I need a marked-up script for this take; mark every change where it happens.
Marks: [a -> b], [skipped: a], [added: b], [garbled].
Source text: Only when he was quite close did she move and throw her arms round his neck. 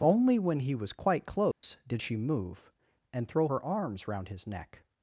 Only when he was quite close did she move and throw her arms round his neck.